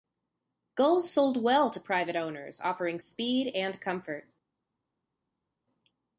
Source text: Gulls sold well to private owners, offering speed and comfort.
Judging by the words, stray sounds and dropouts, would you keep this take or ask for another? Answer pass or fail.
pass